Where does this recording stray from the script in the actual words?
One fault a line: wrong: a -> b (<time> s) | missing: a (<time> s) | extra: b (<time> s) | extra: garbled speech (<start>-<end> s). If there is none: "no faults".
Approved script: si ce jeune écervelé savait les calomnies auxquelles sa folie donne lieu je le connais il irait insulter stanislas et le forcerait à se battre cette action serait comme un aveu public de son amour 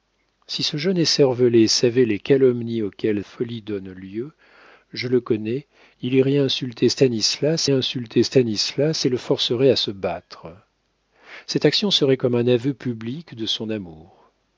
missing: sa (3.2 s)
extra: insulter stanislas (7.7 s)